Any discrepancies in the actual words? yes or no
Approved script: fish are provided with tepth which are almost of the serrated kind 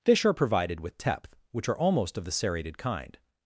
no